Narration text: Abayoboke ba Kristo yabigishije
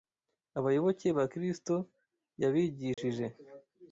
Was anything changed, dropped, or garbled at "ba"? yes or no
no